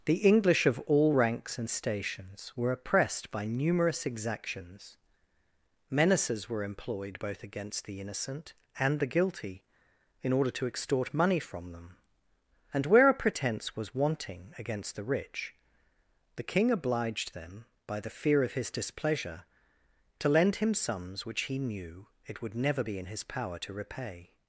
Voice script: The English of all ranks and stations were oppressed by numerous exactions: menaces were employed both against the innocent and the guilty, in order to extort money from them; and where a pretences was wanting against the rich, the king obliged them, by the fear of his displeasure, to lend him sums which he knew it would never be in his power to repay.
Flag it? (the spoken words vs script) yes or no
yes